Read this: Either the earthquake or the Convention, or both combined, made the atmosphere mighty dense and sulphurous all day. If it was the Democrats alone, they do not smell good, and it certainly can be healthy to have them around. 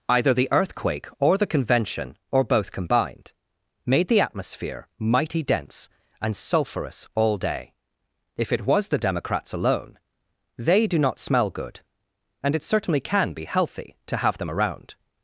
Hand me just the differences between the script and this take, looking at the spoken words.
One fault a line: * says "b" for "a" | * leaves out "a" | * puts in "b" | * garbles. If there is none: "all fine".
all fine